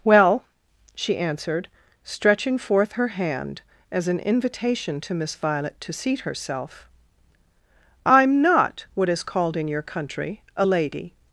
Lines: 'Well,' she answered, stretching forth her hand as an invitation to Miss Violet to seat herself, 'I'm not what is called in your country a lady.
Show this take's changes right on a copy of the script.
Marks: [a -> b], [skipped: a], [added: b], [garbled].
'Well,' she answered, stretching forth her hand as an invitation to Miss Violet to seat herself, 'I'm not what is called in your country a lady.